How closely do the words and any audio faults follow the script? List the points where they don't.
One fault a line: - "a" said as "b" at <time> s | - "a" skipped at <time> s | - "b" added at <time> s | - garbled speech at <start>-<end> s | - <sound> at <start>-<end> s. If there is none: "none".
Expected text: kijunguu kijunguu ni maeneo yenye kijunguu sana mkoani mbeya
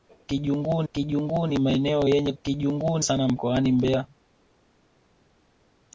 none